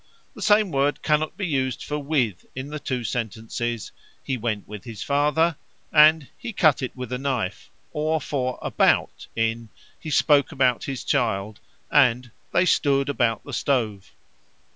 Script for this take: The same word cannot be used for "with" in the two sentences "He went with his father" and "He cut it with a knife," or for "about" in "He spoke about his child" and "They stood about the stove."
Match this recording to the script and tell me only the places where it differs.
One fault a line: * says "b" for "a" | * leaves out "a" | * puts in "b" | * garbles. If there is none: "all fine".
all fine